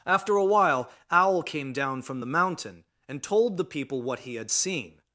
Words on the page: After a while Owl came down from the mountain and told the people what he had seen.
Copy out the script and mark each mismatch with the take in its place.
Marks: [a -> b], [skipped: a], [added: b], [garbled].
After a while Owl came down from the mountain and told the people what he had seen.